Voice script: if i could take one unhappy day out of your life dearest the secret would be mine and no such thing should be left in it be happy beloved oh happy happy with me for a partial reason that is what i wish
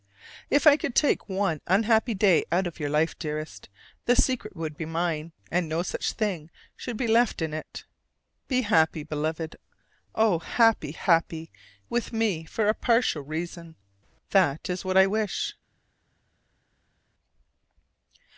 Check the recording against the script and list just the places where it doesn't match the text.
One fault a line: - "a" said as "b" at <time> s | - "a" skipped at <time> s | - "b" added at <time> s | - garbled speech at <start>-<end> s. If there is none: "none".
none